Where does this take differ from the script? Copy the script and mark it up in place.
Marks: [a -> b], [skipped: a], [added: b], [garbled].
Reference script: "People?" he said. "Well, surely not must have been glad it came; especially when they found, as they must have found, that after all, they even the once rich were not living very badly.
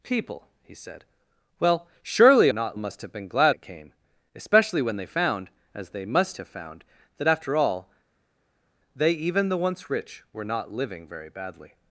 "People?" he said. "Well, surely not must have been glad it came; especially when they found, as they must have found, that after all, they even the once rich were not living very badly.